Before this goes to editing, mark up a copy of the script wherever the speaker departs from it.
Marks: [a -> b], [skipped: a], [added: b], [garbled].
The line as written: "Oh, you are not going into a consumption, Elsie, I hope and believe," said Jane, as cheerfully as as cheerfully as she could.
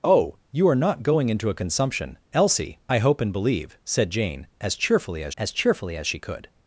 "Oh, you are not going into a consumption, Elsie, I hope and believe," said Jane, as cheerfully as as cheerfully as she could.